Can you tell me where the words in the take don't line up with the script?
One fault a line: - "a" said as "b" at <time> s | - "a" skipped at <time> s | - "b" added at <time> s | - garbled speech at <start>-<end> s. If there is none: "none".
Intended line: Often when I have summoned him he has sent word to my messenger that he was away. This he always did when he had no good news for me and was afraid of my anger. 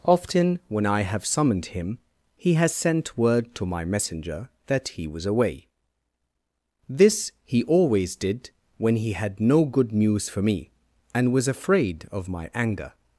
none